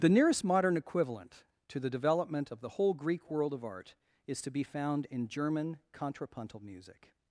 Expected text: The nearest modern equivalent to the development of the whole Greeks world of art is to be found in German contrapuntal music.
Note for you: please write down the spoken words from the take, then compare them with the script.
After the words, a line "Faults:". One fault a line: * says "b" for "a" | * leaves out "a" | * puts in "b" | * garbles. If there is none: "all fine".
The nearest modern equivalent to the development of the whole Greek world of art is to be found in German contrapuntal music.
Faults:
* says "Greek" for "Greeks"